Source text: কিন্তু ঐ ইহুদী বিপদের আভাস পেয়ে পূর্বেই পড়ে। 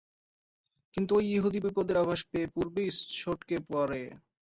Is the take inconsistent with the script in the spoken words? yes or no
yes